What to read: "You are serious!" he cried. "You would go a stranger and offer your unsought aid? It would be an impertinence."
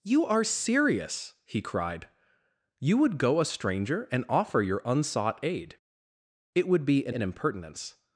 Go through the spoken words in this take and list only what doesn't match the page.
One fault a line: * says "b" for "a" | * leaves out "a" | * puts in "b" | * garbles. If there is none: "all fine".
* puts in "an"